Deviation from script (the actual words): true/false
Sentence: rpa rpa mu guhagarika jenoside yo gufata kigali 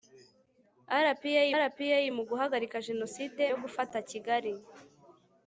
false